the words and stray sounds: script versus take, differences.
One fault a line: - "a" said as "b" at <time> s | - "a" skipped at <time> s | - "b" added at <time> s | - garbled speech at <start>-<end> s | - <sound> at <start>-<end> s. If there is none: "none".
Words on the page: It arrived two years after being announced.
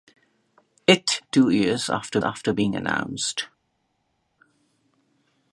- "arrived" skipped at 1.2 s
- "after" added at 2.2 s